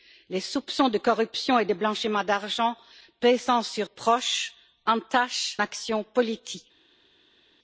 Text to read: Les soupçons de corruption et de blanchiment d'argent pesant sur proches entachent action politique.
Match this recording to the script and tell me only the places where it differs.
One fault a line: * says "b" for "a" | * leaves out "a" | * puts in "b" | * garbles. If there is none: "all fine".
all fine